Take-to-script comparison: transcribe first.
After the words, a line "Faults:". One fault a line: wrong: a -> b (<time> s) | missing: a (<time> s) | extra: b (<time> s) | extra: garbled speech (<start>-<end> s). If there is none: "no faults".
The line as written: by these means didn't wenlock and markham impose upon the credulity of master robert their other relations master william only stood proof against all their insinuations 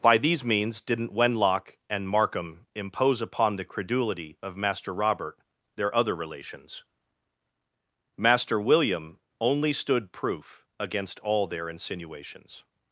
by these means didn't wenlock and markham impose upon the credulity of master robert their other relations master william only stood proof against all their insinuations
Faults:
no faults